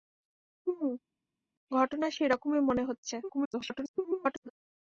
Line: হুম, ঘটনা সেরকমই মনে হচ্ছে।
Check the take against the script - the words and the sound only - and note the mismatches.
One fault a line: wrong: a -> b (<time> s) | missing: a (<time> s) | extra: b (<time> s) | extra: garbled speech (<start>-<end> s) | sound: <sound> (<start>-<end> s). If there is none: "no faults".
extra: garbled speech (3.2-4.5 s)